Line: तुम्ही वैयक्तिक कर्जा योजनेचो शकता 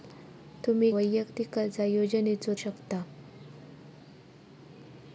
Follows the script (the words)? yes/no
yes